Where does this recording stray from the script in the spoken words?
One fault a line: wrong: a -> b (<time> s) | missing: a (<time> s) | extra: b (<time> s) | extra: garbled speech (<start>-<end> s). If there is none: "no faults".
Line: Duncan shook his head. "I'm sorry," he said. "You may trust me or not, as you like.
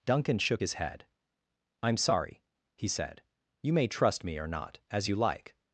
no faults